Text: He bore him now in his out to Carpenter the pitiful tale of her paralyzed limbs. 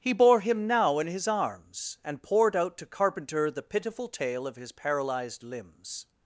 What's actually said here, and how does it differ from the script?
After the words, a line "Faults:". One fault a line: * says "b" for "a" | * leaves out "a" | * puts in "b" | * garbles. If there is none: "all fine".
He bore him now in his arms, and poured out to Carpenter the pitiful tale of his paralyzed limbs.
Faults:
* puts in "arms and poured"
* says "his" for "her"